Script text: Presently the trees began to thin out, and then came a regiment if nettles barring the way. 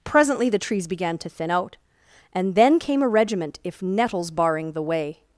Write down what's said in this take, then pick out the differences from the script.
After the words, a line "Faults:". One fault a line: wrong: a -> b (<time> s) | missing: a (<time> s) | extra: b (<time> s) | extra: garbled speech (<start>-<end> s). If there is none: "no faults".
Presently the trees began to thin out, and then came a regiment if nettles barring the way.
Faults:
no faults